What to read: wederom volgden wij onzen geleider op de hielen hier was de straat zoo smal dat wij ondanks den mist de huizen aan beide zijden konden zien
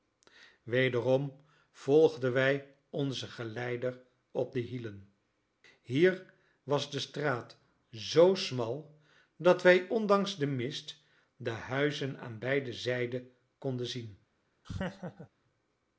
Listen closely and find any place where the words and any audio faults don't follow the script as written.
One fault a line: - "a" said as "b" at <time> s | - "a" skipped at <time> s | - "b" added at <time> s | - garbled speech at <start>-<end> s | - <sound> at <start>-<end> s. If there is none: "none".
- laugh at 14.6-15.3 s